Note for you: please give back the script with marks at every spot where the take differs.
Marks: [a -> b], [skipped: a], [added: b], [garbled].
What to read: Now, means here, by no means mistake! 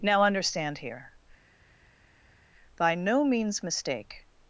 Now, [means -> understand] here, by no means mistake!